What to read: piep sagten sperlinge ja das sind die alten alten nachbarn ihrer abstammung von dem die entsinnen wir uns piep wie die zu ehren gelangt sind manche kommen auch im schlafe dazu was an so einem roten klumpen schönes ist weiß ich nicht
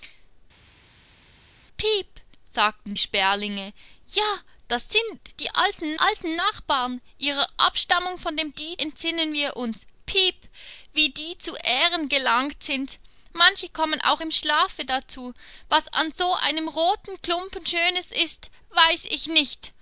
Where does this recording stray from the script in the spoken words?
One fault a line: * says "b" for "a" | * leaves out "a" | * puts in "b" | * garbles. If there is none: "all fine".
all fine